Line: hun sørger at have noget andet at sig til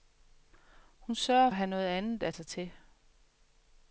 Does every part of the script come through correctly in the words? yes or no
yes